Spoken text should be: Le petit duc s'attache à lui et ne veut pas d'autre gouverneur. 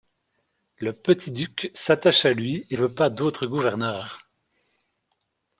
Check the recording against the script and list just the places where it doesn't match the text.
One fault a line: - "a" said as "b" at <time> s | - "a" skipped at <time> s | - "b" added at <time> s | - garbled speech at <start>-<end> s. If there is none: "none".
- "ne" skipped at 2.8 s